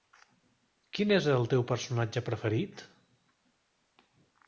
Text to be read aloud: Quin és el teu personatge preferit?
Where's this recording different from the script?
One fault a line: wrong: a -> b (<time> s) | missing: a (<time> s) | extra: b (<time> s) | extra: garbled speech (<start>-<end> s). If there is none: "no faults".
no faults